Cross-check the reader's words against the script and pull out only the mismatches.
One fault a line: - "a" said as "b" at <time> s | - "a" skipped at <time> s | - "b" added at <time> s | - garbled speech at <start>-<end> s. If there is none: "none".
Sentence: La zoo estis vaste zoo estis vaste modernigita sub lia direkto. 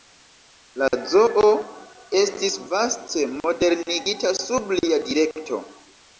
- "zoo estis vaste" skipped at 3.3 s